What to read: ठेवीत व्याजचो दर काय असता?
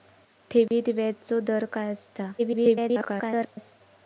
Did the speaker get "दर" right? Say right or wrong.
right